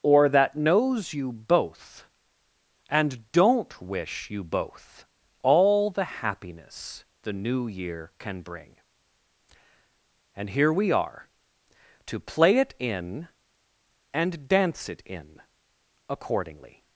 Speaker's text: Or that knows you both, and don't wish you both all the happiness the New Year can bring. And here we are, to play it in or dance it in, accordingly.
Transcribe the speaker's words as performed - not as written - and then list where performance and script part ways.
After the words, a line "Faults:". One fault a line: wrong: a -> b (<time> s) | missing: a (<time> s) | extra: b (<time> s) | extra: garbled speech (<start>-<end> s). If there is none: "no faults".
Or that knows you both, and don't wish you both all the happiness the New Year can bring. And here we are, to play it in and dance it in, accordingly.
Faults:
wrong: or -> and (14.1 s)